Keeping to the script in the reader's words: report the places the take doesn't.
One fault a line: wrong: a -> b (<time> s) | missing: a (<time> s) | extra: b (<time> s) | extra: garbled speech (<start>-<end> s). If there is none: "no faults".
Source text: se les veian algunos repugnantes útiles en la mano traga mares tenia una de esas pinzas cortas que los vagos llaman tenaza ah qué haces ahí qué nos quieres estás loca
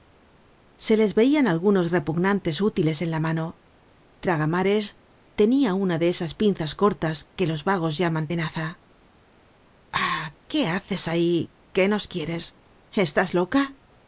no faults